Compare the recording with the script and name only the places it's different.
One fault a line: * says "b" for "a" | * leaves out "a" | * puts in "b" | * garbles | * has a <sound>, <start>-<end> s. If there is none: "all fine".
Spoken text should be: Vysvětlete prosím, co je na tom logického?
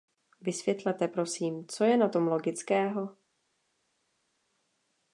all fine